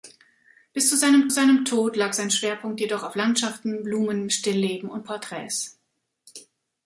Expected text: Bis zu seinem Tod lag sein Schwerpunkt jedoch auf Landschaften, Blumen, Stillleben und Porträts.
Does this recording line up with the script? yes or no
no